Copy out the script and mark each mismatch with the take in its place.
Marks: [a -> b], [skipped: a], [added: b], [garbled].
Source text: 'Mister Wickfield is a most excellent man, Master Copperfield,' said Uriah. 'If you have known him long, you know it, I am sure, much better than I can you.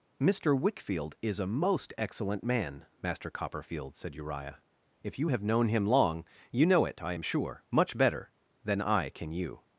'Mister Wickfield is a most excellent man, Master Copperfield,' said Uriah. 'If you have known him long, you know it, I am sure, much better than I can you.